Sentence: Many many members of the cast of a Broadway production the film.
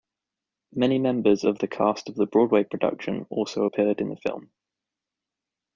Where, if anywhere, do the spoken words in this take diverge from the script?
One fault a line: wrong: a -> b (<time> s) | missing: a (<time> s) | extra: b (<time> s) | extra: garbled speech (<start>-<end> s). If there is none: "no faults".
missing: many (1.0 s)
wrong: a -> the (2.1 s)
extra: also appeared in (3.3 s)